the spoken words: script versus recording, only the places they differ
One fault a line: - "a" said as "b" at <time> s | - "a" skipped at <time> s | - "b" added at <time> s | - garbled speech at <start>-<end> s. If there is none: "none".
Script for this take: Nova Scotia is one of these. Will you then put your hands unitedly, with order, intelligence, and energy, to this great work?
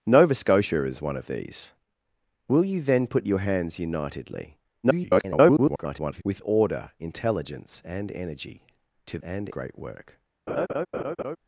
- garbled speech at 4.8-6.2 s
- "this" said as "and" at 9.2 s